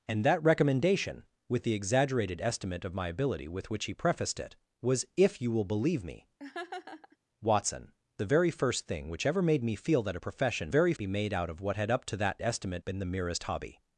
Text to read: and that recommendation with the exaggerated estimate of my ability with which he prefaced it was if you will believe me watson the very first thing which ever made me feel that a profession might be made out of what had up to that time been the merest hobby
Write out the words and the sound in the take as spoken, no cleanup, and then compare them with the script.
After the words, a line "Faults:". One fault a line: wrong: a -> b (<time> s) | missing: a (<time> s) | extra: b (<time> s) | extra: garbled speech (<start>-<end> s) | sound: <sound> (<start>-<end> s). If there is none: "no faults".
and that recommendation with the exaggerated estimate of my ability with which he prefaced it was if you will believe me watson the very first thing which ever made me feel that a profession very be made out of what had up to that estimate been the merest hobby
Faults:
sound: laugh (6.4-7.2 s)
wrong: might -> very (10.7 s)
wrong: time -> estimate (12.4 s)